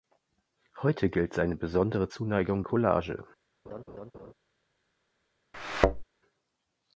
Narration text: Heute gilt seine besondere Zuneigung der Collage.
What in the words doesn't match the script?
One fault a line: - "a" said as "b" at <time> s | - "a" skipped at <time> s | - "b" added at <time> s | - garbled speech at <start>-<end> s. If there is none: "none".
- "der" skipped at 2.6 s